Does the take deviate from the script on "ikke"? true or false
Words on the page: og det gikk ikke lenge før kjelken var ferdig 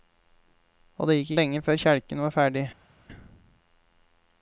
true